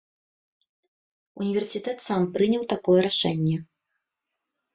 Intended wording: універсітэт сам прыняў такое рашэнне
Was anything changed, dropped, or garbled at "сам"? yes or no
no